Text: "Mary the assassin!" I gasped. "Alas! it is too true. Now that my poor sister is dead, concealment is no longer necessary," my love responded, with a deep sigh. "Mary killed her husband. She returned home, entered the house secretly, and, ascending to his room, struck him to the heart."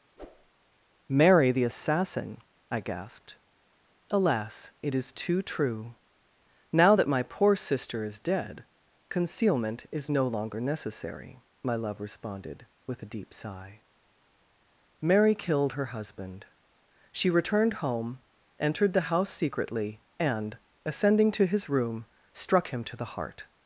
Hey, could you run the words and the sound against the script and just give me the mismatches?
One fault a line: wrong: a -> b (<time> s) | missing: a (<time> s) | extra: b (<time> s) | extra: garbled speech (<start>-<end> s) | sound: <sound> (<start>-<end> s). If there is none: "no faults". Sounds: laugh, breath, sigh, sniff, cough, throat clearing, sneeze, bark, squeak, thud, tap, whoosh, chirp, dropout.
sound: whoosh (0.2-0.5 s)